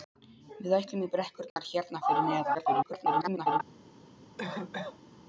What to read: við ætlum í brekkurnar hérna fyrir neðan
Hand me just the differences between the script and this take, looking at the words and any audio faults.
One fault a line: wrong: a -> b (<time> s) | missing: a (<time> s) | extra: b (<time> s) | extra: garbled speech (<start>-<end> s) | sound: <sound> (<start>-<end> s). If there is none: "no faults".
sound: dropout (1.5-1.6 s)
extra: garbled speech (2.5-3.6 s)
sound: cough (4.4-5.1 s)